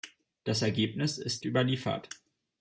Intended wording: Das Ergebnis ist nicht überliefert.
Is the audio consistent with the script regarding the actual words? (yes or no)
no